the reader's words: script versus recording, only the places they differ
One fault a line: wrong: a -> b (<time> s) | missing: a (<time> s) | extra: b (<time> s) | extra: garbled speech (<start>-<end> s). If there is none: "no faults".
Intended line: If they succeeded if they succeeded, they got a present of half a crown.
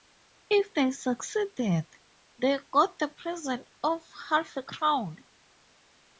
missing: if (1.9 s)
missing: succeeded they (2.6 s)
wrong: a -> the (3.0 s)